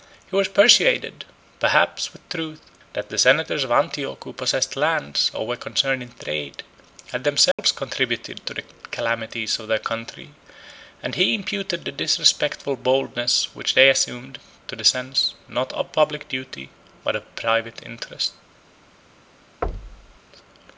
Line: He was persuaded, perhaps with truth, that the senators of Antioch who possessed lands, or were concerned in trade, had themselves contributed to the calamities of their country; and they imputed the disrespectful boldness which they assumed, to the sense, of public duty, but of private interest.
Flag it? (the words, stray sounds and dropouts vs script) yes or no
yes